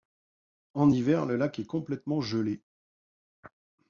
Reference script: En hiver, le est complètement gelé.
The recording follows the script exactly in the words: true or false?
false